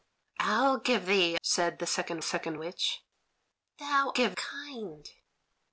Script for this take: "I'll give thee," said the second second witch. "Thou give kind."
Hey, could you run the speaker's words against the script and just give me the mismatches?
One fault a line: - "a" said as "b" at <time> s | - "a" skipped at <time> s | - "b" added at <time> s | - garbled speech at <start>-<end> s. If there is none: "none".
none